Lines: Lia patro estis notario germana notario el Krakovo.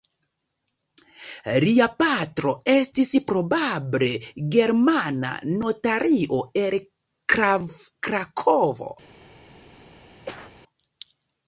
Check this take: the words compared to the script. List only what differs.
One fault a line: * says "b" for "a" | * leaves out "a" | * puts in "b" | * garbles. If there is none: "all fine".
* says "probable" for "notario"